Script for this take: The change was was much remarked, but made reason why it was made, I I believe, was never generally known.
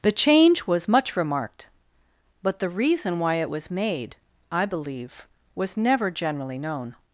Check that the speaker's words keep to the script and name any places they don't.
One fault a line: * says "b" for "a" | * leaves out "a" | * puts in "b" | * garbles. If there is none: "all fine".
* leaves out "was"
* says "the" for "made"
* leaves out "I"